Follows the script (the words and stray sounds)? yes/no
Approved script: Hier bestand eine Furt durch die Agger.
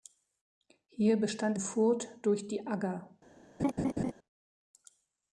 no